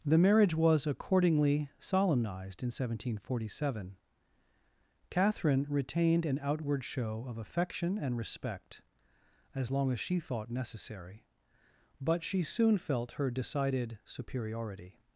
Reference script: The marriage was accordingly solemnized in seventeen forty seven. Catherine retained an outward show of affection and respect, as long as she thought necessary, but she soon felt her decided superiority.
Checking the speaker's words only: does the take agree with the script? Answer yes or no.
yes